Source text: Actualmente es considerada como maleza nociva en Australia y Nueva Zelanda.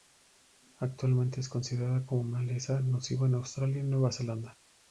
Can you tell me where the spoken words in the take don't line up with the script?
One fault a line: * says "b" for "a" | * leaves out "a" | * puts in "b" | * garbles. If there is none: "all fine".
all fine